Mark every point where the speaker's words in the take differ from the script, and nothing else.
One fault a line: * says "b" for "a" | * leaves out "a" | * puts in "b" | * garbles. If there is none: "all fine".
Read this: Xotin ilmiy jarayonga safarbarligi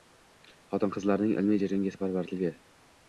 * puts in "qizlarning"